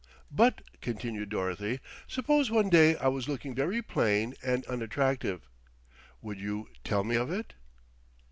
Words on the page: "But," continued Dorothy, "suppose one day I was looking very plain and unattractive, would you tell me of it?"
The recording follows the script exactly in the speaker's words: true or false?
true